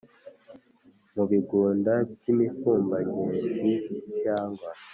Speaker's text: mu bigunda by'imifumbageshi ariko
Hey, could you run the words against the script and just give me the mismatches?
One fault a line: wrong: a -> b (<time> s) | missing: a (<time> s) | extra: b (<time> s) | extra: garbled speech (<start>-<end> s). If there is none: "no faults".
wrong: ariko -> cyangwa (4.2 s)